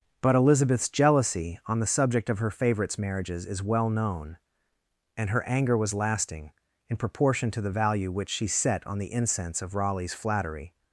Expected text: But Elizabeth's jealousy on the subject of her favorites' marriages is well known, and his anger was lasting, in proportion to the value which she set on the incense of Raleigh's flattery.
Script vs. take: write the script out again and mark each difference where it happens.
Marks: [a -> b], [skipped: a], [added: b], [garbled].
But Elizabeth's jealousy on the subject of her favorites' marriages is well known, and [his -> her] anger was lasting, in proportion to the value which she set on the incense of Raleigh's flattery.